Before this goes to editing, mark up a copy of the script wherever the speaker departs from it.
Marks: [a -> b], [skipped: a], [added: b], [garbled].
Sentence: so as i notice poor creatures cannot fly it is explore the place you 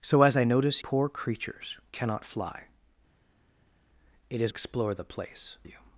so as i notice poor creatures cannot fly it is explore the place you